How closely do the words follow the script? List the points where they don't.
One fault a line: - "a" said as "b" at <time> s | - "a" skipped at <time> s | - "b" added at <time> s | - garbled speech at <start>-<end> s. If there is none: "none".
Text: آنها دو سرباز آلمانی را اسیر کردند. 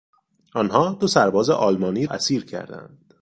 - "را" skipped at 2.0 s